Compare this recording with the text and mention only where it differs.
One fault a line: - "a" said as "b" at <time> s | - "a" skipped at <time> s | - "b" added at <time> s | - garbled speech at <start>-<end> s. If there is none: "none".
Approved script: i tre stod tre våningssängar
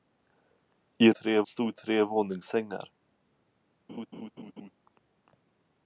none